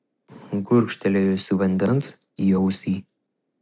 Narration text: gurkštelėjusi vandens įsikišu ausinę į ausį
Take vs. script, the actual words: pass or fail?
fail